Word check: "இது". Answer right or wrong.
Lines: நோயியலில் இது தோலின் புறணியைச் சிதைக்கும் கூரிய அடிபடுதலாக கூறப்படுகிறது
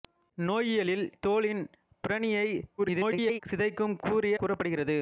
wrong